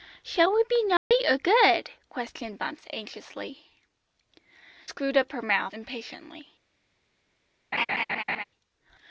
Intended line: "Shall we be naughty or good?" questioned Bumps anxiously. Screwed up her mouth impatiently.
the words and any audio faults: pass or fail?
fail